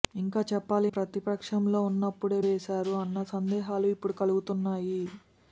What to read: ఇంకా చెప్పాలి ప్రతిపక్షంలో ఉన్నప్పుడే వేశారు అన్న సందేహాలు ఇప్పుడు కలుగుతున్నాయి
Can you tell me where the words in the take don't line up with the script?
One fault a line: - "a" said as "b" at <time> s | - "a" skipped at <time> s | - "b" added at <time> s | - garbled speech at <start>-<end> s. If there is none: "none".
none